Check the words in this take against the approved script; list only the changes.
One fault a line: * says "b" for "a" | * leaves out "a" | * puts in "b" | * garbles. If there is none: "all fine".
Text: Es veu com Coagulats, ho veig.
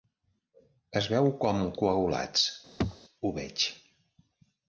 all fine